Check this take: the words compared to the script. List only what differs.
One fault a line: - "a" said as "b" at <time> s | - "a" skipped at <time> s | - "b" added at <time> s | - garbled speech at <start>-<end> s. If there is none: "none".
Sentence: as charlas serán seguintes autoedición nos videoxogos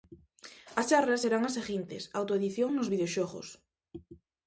- "as" added at 1.5 s